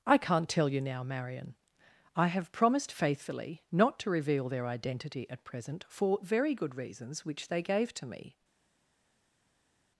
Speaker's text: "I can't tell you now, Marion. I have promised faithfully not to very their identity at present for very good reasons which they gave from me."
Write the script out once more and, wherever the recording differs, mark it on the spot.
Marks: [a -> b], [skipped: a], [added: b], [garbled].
"I can't tell you now, Marion. I have promised faithfully not to [very -> reveal] their identity at present for very good reasons which they gave [from -> to] me."